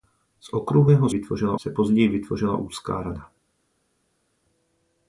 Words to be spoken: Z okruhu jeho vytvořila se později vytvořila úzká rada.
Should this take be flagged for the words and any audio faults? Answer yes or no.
no